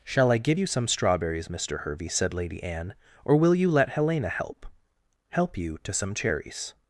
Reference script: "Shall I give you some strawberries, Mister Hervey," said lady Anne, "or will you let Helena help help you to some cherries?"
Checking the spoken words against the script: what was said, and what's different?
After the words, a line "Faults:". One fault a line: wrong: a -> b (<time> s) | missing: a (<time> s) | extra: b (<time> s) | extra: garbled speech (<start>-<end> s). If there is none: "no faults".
"Shall I give you some strawberries, Mister Hervey," said lady Anne, "or will you let Helena help help you to some cherries?"
Faults:
no faults